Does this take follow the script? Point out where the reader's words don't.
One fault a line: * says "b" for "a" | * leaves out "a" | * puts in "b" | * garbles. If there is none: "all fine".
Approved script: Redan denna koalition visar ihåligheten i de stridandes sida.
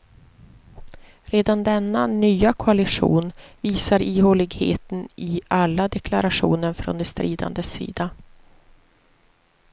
* puts in "nya"
* puts in "alla deklarationer från"